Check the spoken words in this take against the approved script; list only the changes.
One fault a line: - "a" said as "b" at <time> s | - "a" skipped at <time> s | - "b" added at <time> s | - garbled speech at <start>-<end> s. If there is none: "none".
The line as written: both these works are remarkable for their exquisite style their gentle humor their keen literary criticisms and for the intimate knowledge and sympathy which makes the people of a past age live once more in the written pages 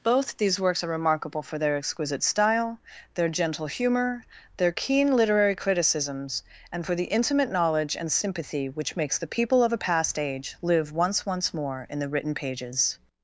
- "once" added at 11.3 s